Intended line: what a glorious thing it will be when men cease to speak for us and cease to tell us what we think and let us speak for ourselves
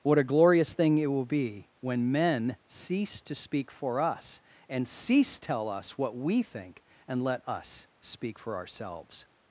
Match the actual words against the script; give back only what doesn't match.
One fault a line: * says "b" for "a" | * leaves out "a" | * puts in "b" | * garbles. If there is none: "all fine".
* leaves out "to"